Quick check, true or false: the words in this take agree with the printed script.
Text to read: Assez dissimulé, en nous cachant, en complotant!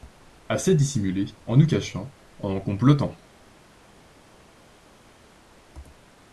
true